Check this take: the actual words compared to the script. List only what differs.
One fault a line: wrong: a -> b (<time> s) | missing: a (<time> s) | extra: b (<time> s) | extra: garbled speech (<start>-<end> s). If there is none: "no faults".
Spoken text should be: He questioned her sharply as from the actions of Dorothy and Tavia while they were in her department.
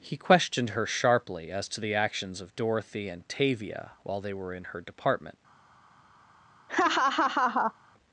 wrong: from -> to (1.7 s)